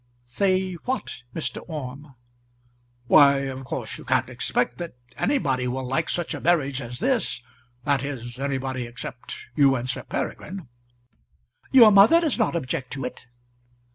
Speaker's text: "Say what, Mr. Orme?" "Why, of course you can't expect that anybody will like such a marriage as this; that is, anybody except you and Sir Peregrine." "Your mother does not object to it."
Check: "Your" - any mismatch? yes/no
no